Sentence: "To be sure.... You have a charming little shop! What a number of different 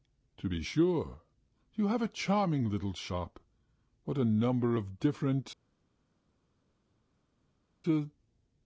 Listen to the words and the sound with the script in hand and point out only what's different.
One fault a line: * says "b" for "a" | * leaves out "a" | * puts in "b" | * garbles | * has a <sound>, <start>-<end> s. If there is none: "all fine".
all fine